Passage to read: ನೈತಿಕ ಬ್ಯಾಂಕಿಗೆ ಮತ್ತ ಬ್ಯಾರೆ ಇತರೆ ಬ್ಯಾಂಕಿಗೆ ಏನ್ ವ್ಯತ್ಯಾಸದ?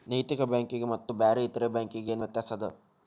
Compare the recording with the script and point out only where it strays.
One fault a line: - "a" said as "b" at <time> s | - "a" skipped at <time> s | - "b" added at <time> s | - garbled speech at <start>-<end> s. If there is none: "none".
none